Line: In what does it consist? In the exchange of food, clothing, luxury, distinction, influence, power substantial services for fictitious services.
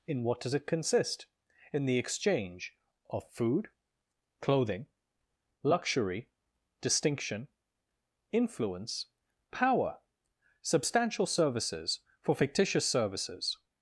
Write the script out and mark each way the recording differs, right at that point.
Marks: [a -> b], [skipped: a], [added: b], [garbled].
In what does it consist? In the exchange of food, clothing, luxury, distinction, influence, power substantial services for fictitious services.